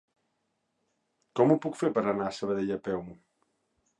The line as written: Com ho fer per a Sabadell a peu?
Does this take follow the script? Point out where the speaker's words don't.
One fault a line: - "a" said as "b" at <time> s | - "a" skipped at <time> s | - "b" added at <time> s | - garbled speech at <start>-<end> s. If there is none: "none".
- "puc" added at 1.7 s
- "anar" added at 2.1 s